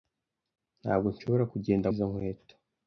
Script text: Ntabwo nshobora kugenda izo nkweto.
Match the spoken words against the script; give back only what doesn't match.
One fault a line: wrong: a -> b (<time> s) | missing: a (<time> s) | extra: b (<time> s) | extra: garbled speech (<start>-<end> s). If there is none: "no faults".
no faults